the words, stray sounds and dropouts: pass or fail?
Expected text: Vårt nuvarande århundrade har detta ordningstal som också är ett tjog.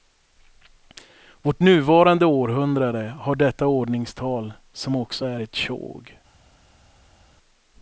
pass